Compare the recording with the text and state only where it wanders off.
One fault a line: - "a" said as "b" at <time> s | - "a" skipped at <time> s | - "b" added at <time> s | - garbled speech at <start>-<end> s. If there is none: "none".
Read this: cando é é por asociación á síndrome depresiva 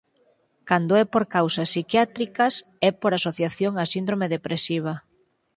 - "por causas psiquiátricas" added at 1.1 s